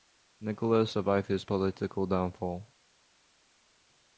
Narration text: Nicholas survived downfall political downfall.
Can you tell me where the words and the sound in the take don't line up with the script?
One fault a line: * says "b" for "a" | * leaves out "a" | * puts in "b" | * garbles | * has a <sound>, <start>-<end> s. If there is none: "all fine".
* says "his" for "downfall"